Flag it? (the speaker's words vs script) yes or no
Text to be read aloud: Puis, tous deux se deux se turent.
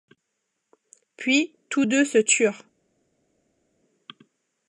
yes